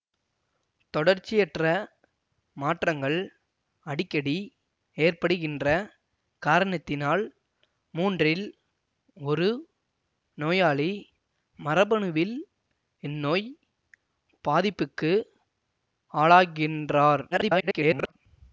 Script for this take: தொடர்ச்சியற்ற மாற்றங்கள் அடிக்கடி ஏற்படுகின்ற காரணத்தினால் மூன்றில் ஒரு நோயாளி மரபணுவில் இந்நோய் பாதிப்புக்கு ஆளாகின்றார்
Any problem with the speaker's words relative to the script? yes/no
yes